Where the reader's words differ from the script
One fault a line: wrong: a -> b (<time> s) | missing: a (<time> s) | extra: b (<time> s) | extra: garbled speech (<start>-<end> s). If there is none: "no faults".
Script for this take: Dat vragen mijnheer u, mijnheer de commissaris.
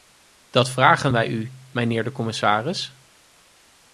wrong: mijnheer -> wij (1.1 s)